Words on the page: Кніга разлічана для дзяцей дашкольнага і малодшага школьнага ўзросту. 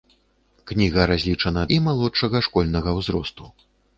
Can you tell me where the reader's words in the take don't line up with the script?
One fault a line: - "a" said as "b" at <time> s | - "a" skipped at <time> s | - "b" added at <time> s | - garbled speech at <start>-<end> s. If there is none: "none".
- "для дзяцей дашкольнага" skipped at 1.6 s